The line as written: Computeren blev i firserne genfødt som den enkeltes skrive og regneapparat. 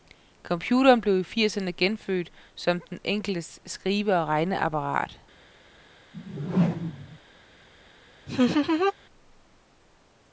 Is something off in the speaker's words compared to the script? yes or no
no